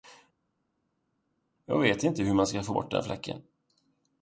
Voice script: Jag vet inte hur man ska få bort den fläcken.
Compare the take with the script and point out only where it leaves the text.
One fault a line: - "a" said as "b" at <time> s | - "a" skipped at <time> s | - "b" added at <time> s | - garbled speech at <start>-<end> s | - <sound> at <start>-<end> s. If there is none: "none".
none